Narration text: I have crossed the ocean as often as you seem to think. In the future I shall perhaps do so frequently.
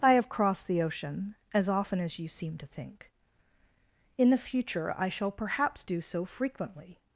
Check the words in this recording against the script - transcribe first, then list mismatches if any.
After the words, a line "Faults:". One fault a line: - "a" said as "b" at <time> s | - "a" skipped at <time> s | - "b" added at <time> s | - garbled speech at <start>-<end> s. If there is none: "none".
I have crossed the ocean as often as you seem to think. In the future I shall perhaps do so frequently.
Faults:
none